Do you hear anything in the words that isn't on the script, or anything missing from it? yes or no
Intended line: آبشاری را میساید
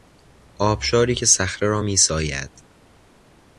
yes